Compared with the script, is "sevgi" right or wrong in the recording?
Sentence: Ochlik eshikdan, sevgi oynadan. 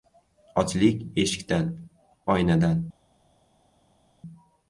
wrong